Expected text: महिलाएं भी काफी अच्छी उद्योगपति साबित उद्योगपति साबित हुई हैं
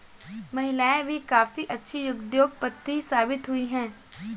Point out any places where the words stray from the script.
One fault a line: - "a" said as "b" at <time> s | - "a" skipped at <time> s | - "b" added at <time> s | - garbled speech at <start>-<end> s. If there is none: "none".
- "उद्योगपति साबित" skipped at 3.5 s